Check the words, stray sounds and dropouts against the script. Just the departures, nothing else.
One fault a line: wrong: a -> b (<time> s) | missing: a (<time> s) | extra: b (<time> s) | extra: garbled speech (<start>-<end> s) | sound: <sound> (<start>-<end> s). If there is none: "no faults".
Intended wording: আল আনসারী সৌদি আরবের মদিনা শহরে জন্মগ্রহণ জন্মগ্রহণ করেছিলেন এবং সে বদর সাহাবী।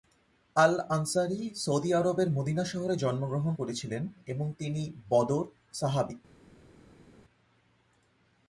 missing: জন্মগ্রহণ (3.5 s)
wrong: সে -> তিনি (4.6 s)